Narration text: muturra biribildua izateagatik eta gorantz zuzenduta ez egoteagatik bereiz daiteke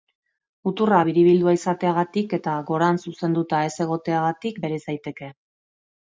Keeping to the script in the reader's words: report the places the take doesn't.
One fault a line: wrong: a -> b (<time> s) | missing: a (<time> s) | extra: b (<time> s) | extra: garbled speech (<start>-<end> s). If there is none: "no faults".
no faults